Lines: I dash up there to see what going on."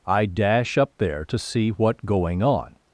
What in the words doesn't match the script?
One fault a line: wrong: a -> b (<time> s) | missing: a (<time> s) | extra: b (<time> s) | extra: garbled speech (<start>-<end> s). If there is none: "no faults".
no faults